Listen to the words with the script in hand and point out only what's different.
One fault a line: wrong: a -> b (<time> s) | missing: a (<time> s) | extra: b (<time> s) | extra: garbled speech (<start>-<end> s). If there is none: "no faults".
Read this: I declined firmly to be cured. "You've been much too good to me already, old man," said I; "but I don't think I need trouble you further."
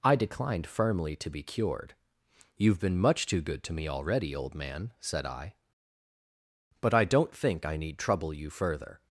no faults